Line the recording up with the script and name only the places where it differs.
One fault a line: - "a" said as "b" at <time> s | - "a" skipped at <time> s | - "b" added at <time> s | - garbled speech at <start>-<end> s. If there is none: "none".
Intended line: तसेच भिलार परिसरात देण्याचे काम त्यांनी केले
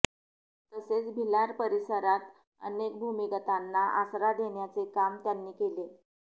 - "अनेक भूमिगतांना आसरा" added at 2.6 s